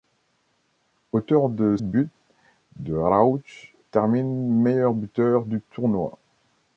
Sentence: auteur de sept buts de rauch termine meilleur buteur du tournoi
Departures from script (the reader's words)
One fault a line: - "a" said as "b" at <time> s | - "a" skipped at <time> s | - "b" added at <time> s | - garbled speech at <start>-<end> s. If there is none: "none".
- "sept" skipped at 1.8 s